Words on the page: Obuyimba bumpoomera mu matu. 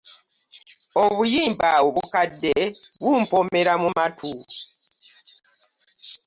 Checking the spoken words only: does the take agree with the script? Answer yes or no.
no